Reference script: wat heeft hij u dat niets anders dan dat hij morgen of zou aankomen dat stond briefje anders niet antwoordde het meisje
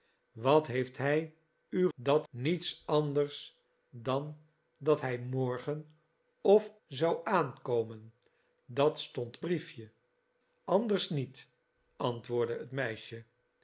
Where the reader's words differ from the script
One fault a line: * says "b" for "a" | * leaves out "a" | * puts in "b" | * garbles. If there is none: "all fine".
all fine